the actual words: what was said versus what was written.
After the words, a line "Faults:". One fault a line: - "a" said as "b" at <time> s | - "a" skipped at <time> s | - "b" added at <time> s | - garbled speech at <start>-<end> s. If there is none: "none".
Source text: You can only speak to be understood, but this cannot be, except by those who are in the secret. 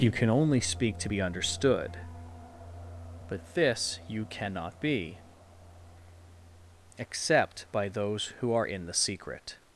You can only speak to be understood, but this you cannot be, except by those who are in the secret.
Faults:
- "you" added at 4.1 s